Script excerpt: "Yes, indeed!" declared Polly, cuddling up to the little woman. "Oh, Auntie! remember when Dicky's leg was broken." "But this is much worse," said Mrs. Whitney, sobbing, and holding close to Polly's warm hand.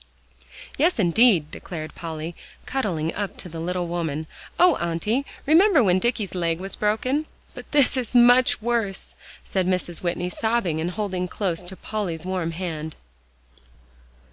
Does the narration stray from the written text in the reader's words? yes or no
no